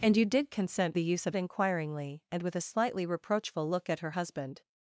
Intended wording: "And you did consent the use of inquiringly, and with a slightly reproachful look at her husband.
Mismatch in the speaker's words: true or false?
false